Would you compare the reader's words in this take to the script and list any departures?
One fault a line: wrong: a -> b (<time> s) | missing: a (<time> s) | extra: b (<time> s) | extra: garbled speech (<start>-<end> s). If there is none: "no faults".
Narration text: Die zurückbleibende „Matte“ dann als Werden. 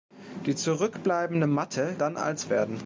no faults